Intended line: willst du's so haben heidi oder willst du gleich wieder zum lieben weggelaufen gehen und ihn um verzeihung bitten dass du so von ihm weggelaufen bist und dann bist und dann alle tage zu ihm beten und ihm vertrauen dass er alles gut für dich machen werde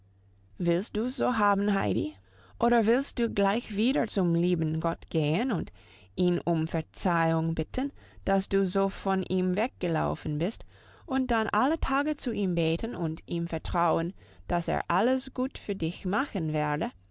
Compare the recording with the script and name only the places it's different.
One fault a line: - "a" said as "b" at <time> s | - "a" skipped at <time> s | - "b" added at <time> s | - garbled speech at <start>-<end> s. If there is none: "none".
- "weggelaufen" said as "gott" at 4.8 s
- "bist und dann" skipped at 11.5 s